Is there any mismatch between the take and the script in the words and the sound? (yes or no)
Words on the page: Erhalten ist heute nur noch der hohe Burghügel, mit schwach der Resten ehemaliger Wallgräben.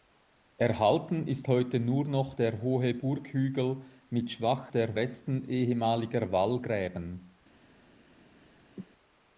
yes